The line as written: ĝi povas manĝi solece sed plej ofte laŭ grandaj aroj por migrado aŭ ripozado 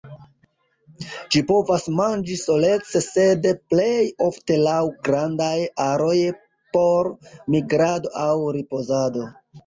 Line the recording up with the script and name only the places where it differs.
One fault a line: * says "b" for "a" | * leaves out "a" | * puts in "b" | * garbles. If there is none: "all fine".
all fine